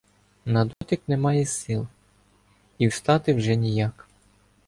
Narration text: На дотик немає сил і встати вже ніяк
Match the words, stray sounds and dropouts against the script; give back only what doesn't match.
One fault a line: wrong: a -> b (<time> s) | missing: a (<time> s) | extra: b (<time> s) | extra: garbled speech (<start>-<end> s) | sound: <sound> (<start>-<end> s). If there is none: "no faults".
sound: dropout (0.7-0.8 s)